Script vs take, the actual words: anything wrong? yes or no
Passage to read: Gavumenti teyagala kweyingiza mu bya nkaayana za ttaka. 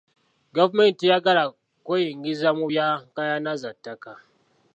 no